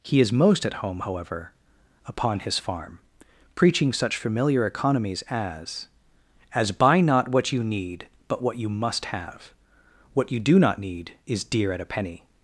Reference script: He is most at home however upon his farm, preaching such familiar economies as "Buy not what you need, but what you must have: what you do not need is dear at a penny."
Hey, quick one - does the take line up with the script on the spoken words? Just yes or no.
no